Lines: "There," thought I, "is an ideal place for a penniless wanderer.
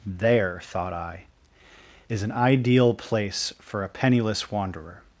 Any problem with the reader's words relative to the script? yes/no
no